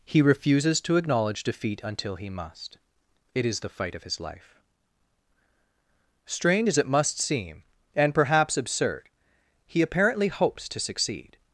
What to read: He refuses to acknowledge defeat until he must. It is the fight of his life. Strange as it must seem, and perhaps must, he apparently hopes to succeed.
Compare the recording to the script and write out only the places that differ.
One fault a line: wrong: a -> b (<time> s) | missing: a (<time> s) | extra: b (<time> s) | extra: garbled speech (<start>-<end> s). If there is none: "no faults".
wrong: must -> absurd (8.6 s)